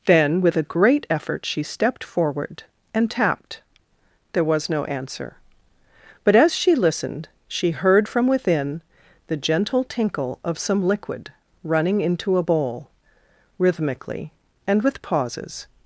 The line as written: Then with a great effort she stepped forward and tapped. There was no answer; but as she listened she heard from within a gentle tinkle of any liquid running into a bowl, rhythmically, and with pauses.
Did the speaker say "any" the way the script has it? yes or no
no